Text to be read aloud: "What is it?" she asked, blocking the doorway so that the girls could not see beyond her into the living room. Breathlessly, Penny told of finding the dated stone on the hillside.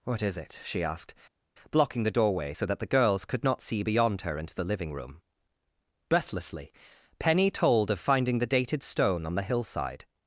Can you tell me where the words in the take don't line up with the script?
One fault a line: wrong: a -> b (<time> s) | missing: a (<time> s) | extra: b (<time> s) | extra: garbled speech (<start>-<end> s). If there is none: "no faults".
no faults